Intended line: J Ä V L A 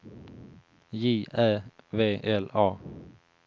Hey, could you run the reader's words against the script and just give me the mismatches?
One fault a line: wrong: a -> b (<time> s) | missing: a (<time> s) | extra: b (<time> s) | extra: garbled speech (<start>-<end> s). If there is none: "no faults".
no faults